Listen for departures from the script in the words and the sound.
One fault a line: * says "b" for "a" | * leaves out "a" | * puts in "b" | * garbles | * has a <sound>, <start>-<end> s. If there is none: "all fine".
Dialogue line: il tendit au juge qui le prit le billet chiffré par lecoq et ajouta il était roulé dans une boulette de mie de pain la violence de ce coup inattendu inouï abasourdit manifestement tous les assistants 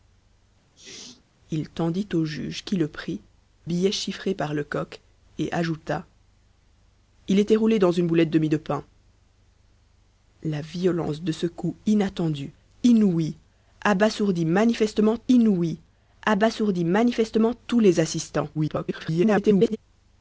* has a sneeze, 0.7-1.2 s
* leaves out "le"
* puts in "inouï abasourdit manifestement"
* garbles